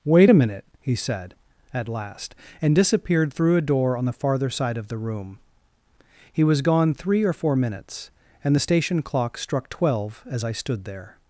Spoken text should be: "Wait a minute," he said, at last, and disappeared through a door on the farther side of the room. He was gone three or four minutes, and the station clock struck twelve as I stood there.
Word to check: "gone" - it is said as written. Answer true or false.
true